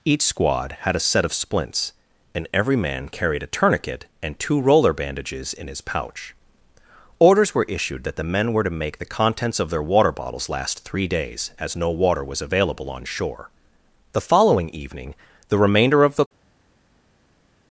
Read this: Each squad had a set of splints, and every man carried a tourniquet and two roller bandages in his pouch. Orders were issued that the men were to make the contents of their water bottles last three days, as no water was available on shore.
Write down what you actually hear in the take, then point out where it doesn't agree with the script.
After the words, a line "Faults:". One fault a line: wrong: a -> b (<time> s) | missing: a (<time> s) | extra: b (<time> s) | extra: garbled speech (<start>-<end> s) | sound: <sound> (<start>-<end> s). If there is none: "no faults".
Each squad had a set of splints, and every man carried a tourniquet and two roller bandages in his pouch. Orders were issued that the men were to make the contents of their water bottles last three days, as no water was available on shore. The following evening the remainder of the
Faults:
extra: The following evening the remainder of the (14.1 s)